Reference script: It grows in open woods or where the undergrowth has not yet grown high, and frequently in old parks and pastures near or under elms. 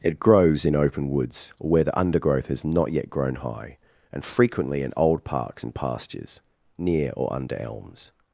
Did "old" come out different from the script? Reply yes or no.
no